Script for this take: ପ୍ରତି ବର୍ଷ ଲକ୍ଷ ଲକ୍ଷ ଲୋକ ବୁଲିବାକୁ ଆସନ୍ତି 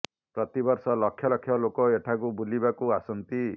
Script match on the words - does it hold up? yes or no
no